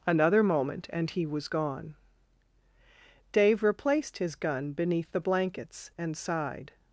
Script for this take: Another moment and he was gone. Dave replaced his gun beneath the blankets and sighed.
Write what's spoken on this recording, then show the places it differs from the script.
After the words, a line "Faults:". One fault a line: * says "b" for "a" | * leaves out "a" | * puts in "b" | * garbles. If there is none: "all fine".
Another moment and he was gone. Dave replaced his gun beneath the blankets and sighed.
Faults:
all fine